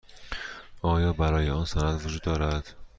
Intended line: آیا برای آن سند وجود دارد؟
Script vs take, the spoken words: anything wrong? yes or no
no